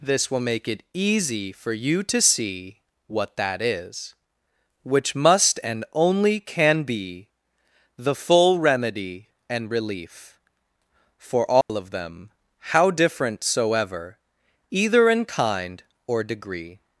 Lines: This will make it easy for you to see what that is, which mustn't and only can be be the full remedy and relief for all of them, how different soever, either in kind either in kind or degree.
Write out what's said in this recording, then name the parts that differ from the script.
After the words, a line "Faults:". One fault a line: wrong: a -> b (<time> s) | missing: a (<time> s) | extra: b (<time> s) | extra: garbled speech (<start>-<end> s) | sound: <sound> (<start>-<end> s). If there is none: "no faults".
This will make it easy for you to see what that is, which must and only can be the full remedy and relief for all of them, how different soever, either in kind or degree.
Faults:
wrong: mustn't -> must (5.2 s)
missing: be (7.3 s)
sound: dropout (11.6-11.7 s)
missing: either in kind (15.8 s)